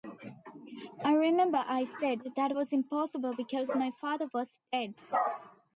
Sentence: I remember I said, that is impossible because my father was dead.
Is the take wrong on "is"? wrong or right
wrong